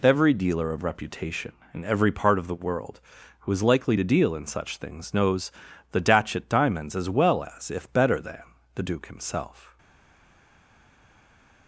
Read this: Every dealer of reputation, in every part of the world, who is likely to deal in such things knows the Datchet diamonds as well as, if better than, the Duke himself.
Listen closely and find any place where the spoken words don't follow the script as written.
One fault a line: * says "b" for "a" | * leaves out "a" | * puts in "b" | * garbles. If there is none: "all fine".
all fine